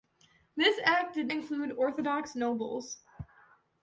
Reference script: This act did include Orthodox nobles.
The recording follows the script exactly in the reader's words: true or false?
true